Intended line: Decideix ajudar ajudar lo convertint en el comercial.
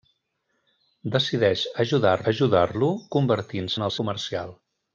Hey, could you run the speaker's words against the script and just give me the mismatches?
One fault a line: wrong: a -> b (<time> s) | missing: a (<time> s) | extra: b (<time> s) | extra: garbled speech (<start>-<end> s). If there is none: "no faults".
no faults